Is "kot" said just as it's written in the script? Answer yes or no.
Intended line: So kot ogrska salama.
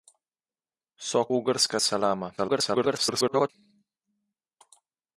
no